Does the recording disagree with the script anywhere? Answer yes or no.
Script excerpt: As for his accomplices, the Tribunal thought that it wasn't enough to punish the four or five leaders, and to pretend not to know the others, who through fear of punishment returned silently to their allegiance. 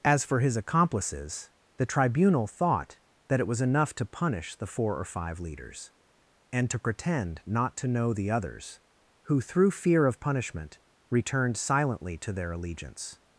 yes